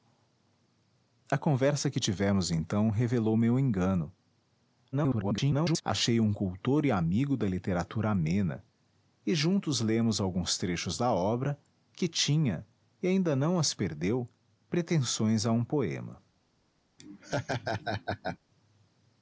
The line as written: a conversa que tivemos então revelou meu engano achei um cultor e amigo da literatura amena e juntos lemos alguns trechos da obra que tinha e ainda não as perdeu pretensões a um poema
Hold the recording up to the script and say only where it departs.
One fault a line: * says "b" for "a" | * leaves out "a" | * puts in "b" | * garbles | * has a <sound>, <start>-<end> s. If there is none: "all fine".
* garbles
* has a laugh, 17.0-18.4 s